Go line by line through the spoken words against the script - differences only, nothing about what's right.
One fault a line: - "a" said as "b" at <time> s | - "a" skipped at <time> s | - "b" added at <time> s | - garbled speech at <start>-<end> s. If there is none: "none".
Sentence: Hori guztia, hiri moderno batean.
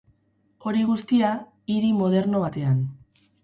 none